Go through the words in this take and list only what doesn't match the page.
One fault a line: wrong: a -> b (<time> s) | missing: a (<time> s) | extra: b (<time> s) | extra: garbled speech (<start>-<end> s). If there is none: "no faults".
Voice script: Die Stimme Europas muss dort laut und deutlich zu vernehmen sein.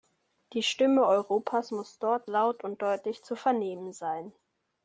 no faults